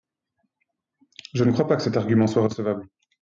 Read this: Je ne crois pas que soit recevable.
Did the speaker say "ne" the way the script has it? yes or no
yes